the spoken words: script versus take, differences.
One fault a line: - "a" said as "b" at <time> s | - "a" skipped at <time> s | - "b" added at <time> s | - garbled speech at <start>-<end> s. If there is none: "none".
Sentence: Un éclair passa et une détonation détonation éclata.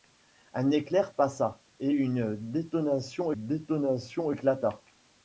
none